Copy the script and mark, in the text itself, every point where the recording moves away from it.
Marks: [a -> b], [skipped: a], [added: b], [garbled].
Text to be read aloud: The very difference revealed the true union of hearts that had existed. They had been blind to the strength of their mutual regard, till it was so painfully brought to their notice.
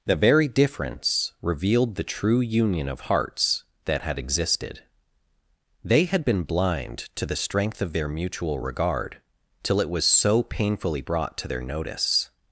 The very difference revealed the true union of hearts that had existed. They had been blind to the strength of their mutual regard, till it was so painfully brought to their notice.